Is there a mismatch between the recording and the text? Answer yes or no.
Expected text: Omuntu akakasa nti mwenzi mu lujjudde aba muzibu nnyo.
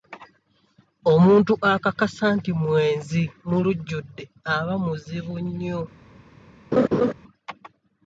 no